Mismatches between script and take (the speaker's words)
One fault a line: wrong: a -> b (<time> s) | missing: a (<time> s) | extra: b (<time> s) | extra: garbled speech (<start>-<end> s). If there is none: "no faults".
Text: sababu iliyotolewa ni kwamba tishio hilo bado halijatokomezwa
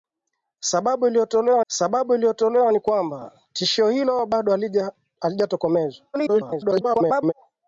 extra: sababu iliyotolewa (1.7 s)
extra: garbled speech (6.1-7.3 s)